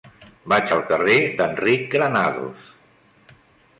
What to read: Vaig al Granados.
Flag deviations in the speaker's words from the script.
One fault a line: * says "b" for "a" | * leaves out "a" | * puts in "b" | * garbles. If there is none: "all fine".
* puts in "carrer d'Enric"